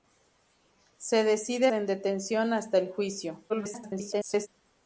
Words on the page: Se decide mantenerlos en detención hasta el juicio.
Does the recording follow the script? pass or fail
fail